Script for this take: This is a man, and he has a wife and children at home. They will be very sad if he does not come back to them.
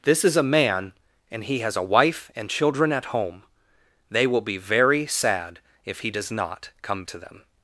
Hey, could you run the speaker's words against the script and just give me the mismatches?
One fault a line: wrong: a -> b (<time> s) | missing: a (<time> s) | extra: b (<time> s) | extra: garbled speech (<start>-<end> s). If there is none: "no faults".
missing: back (7.0 s)